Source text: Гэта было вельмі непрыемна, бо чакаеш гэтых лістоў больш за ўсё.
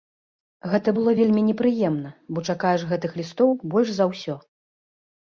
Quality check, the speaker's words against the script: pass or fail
pass